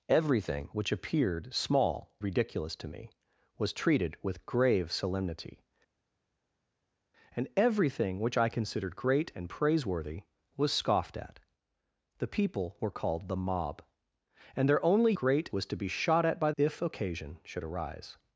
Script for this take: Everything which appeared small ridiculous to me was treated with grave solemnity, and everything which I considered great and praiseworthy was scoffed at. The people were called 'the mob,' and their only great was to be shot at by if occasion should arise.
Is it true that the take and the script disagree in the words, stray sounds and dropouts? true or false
false